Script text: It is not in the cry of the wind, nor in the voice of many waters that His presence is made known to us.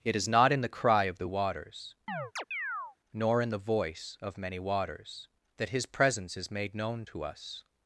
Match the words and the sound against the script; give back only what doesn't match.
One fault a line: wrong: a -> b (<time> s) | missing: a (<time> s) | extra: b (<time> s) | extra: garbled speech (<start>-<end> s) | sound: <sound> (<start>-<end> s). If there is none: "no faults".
wrong: wind -> waters (1.2 s)
sound: chirp (2.1-3.0 s)